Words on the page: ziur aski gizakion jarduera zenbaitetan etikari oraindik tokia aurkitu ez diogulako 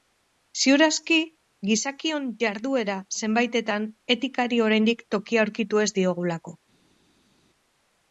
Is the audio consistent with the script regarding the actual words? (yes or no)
yes